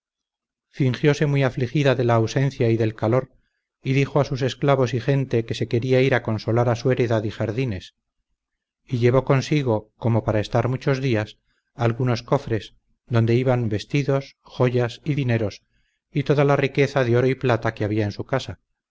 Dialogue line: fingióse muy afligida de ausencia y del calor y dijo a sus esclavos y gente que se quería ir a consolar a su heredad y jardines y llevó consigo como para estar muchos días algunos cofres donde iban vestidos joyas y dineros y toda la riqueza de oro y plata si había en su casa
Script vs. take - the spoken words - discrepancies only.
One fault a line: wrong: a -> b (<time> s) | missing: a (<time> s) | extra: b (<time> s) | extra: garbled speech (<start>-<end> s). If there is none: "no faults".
extra: la (2.0 s)
wrong: si -> que (17.7 s)